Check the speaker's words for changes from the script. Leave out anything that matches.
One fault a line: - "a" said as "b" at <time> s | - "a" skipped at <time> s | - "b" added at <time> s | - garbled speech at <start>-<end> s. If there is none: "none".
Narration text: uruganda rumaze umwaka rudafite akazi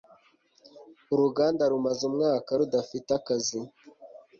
none